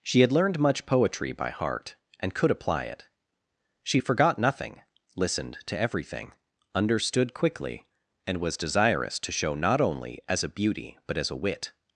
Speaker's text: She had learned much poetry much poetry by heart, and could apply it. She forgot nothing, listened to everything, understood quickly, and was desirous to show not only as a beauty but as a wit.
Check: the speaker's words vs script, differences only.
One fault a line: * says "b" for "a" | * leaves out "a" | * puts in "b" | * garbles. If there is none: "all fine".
* leaves out "much poetry"